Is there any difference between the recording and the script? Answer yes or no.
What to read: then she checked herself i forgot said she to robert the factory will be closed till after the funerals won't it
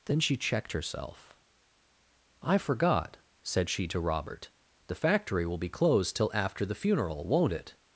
yes